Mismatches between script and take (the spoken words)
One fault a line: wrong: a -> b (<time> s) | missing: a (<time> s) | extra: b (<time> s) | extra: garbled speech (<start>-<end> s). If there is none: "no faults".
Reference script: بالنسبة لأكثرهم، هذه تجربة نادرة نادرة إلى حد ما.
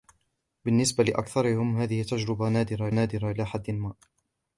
no faults